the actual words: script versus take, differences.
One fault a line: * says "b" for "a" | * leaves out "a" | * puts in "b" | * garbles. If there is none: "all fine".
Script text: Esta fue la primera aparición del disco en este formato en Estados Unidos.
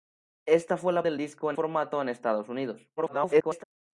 * leaves out "primera aparición"
* leaves out "este"
* garbles